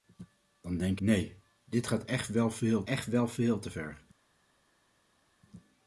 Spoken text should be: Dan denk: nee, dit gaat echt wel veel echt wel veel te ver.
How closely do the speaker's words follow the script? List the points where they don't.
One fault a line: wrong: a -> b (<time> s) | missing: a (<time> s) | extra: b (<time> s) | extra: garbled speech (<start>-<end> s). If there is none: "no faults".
no faults